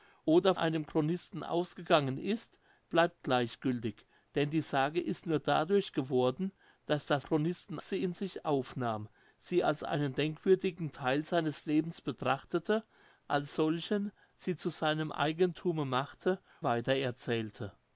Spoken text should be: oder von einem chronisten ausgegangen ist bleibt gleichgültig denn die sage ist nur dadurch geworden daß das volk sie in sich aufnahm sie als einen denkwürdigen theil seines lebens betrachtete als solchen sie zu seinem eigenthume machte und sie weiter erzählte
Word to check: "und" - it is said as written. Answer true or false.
false